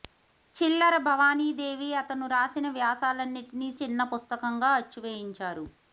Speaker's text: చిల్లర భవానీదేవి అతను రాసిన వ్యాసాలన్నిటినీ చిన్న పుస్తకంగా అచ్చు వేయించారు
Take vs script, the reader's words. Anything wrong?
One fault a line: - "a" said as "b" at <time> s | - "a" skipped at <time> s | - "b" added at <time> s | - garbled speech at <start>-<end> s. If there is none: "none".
none